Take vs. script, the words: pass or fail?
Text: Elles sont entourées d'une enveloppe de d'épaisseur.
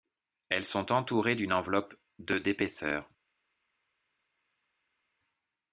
pass